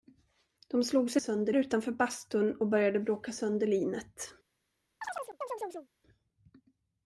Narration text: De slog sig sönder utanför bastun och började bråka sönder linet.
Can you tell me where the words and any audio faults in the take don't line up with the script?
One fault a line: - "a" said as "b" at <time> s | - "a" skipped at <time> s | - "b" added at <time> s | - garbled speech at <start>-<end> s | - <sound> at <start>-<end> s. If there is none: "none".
- chirp at 5.0-5.9 s